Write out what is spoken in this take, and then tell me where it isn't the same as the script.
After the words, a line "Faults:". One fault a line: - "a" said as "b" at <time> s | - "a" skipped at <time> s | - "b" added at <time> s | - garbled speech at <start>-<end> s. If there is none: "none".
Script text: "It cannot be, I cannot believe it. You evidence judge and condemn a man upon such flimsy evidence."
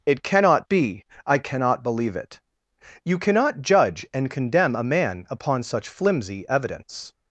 "It cannot be, I cannot believe it. You cannot judge and condemn a man upon such flimsy evidence."
Faults:
- "evidence" said as "cannot" at 3.2 s